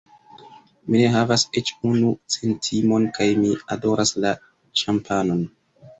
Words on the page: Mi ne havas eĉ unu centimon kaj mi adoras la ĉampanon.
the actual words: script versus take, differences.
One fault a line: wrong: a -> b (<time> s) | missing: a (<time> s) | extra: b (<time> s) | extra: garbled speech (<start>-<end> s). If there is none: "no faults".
no faults